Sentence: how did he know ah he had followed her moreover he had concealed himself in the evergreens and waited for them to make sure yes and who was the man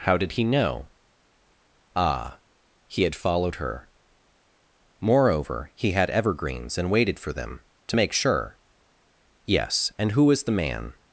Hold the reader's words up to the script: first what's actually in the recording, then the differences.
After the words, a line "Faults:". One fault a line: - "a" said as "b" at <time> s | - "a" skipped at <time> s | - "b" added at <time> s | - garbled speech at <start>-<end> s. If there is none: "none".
how did he know ah he had followed her moreover he had evergreens and waited for them to make sure yes and who was the man
Faults:
- "concealed himself in the" skipped at 6.1 s